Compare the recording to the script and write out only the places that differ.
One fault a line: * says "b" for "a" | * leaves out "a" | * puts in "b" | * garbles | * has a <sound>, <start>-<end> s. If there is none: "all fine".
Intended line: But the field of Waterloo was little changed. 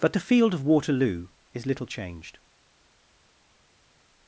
* says "is" for "was"